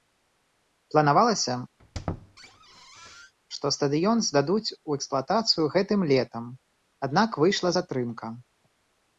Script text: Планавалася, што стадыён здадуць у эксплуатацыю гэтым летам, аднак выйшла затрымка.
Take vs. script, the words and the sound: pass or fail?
fail